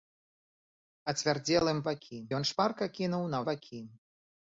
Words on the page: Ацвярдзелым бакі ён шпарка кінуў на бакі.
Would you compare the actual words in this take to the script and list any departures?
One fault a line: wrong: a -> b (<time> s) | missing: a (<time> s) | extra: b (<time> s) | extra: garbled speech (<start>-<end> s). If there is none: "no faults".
no faults